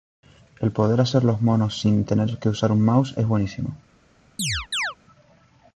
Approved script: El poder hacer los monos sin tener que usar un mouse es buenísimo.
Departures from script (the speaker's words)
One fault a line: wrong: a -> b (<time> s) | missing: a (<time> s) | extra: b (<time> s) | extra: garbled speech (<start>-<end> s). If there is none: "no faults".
no faults